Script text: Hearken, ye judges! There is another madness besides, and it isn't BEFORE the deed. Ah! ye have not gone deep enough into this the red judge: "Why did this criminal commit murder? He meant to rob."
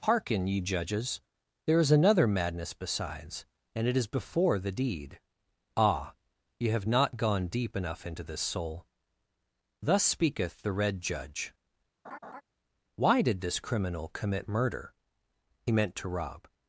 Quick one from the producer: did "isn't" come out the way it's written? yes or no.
no